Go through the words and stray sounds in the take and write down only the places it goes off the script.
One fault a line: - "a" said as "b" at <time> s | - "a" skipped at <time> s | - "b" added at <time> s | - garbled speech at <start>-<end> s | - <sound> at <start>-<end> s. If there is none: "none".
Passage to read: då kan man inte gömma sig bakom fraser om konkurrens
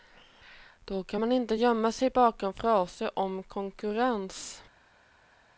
none